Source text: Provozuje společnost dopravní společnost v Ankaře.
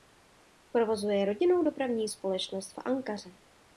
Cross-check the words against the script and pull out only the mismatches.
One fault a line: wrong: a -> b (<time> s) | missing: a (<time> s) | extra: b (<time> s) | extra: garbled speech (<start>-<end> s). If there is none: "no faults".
wrong: společnost -> rodinnou (1.2 s)